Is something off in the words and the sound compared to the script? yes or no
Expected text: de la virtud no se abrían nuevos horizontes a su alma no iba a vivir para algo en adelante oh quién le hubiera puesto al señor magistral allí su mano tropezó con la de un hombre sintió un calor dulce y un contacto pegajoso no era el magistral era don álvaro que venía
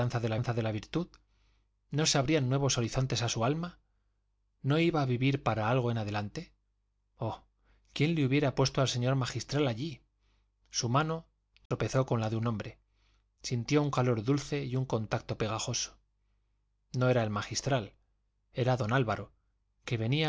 yes